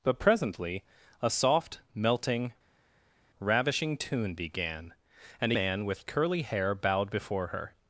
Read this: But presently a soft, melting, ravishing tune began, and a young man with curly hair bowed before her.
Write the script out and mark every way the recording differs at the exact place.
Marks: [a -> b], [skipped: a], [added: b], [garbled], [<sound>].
But presently a soft, melting, ravishing tune began, and [skipped: a young] man with curly hair bowed before her.